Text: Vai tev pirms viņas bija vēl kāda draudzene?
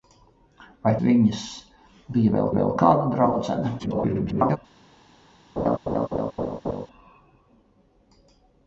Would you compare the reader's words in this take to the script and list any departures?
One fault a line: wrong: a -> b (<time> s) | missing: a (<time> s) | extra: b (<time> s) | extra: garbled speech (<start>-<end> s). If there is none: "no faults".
missing: tev pirms (0.9 s)
extra: vēl (2.6 s)
extra: garbled speech (3.8-4.6 s)